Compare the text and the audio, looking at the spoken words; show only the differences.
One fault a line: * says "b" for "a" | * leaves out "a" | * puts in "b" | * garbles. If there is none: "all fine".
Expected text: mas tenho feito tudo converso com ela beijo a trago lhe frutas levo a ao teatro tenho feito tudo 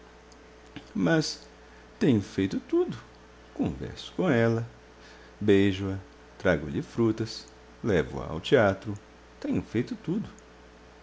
all fine